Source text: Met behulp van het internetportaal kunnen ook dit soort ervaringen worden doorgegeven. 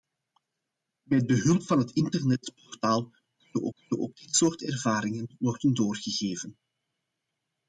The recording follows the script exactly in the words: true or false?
false